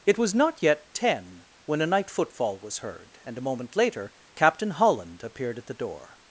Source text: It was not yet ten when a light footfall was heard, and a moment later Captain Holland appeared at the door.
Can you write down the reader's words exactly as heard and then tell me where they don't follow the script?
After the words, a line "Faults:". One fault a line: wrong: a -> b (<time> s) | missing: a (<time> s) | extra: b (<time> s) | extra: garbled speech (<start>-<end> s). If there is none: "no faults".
It was not yet ten when a night footfall was heard, and a moment later Captain Holland appeared at the door.
Faults:
wrong: light -> night (1.9 s)